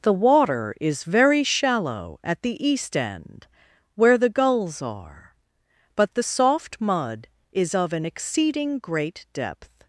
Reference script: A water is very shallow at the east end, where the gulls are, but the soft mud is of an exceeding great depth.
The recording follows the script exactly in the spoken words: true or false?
false